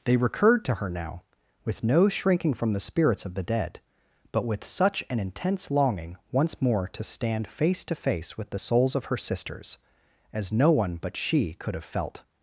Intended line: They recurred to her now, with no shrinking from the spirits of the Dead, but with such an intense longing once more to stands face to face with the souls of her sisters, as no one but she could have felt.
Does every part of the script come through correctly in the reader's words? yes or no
no